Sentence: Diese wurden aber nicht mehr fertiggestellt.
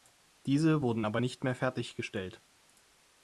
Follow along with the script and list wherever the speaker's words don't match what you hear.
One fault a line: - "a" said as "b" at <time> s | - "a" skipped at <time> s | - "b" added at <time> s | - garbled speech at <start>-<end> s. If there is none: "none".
none